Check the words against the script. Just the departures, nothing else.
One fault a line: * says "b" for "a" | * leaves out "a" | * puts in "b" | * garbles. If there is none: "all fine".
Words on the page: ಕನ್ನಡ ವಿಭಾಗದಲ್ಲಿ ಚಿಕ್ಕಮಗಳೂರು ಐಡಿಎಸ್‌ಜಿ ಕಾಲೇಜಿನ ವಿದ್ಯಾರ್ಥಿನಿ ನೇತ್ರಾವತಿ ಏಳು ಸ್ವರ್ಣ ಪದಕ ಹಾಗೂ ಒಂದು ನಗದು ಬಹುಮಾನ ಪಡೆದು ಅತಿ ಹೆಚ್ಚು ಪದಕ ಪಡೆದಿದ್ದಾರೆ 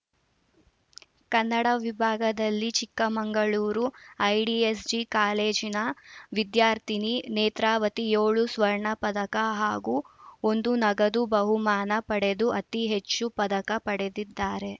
all fine